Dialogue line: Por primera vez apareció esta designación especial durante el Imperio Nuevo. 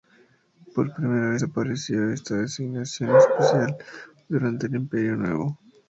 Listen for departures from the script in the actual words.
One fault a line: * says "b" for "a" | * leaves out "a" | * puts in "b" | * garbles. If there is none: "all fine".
all fine